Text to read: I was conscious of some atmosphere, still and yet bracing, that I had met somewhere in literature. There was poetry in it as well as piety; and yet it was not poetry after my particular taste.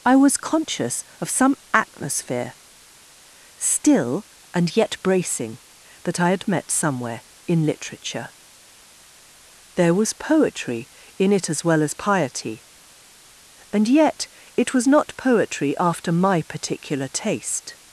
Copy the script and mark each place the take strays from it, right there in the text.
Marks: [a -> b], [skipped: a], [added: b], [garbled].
I was conscious of some atmosphere, still and yet bracing, that I had met somewhere in literature. There was poetry in it as well as piety; and yet it was not poetry after my particular taste.